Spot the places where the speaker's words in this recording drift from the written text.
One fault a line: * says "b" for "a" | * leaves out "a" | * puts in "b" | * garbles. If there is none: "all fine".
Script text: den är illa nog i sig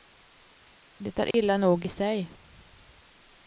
* says "det" for "den"